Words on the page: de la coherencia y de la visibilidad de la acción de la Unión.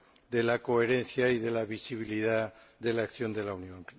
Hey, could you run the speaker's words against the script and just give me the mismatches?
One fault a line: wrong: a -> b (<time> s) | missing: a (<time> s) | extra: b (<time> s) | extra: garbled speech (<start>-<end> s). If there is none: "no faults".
no faults